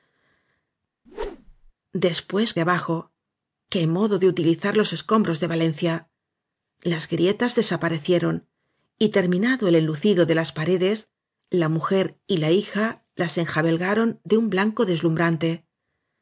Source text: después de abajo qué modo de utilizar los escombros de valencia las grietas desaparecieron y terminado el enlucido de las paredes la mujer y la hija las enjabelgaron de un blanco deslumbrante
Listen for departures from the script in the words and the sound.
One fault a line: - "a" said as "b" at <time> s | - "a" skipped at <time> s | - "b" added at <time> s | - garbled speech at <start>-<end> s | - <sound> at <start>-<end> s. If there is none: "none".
- whoosh at 1.0-1.7 s